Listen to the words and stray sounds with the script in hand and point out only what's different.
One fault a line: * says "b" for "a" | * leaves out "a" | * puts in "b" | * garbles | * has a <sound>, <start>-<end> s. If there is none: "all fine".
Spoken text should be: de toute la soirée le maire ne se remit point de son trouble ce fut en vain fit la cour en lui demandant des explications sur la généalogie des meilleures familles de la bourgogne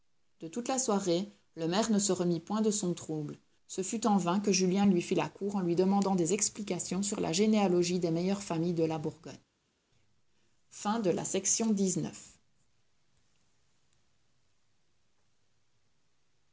* puts in "que julien lui"